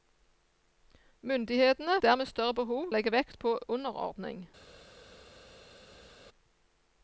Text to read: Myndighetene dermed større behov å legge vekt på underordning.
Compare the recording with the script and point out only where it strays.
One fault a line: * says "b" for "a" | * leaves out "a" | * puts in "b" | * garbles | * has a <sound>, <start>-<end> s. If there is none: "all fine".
all fine